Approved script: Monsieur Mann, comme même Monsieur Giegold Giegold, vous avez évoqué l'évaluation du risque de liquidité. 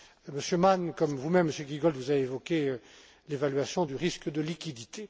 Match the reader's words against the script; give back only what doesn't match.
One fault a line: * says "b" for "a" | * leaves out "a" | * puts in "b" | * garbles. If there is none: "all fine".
* puts in "vous"
* leaves out "Giegold"